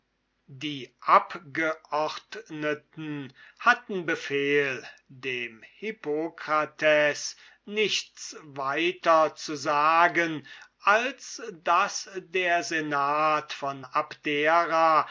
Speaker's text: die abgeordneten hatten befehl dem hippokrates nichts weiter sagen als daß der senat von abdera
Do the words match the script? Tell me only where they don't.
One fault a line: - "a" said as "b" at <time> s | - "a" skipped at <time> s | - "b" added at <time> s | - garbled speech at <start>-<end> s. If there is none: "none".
- "zu" added at 9.3 s